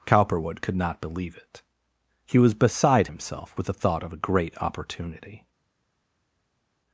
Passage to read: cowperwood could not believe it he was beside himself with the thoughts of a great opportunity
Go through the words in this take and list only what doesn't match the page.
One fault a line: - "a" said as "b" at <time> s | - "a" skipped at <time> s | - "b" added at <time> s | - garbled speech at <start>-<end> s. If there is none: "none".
- "thoughts" said as "thought" at 3.7 s